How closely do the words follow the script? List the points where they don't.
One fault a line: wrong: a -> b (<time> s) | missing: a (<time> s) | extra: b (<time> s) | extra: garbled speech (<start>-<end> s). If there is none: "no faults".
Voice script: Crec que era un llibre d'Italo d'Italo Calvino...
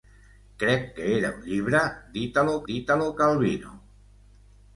no faults